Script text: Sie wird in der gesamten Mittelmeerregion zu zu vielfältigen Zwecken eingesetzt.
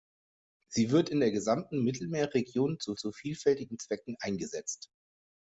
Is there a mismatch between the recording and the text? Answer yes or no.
no